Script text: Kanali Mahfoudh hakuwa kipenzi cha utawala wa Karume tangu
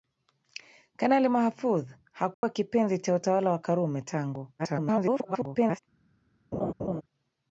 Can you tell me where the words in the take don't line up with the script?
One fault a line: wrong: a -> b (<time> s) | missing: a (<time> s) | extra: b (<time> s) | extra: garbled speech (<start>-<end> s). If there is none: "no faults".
extra: garbled speech (4.6-5.8 s)